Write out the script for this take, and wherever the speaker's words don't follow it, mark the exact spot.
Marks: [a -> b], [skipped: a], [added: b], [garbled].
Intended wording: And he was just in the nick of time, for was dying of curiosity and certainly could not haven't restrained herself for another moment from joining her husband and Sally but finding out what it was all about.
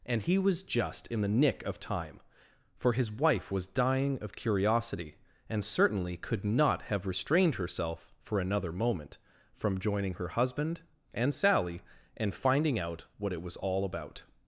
And he was just in the nick of time, for [added: his wife] was dying of curiosity and certainly could not [haven't -> have] restrained herself for another moment from joining her husband and Sally [but -> and] finding out what it was all about.